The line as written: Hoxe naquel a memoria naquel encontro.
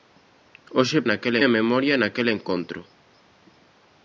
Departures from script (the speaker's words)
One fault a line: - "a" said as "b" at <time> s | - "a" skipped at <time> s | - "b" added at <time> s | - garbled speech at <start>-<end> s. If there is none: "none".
none